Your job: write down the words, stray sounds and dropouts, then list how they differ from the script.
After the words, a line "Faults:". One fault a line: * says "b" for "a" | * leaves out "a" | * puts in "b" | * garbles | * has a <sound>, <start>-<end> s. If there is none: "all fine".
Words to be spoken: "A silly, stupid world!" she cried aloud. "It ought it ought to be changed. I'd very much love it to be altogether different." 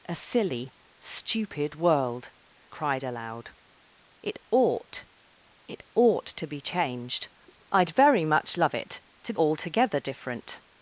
"A silly, stupid world!" cried aloud. "It ought it ought to be changed. I'd very much love it to altogether different."
Faults:
* leaves out "she"
* leaves out "be"